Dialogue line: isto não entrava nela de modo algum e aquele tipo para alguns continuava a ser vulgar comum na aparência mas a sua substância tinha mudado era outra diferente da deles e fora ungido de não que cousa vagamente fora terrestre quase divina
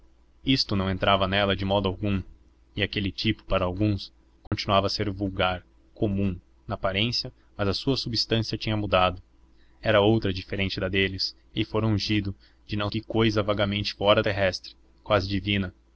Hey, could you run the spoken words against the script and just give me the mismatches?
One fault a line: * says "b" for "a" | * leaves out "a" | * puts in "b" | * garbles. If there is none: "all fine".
all fine